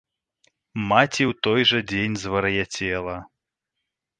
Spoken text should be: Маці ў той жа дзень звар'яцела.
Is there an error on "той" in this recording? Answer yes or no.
no